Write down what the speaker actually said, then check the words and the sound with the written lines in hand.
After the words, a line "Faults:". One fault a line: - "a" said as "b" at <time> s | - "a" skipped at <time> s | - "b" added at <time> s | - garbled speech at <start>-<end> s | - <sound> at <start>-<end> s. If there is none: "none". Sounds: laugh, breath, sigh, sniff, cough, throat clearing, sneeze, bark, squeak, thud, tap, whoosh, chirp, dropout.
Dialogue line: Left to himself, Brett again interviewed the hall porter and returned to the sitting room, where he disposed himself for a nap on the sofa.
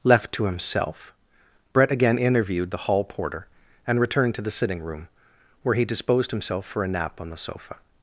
Left to himself, Brett again interviewed the hall porter and returned to the sitting room, where he disposed himself for a nap on the sofa.
Faults:
none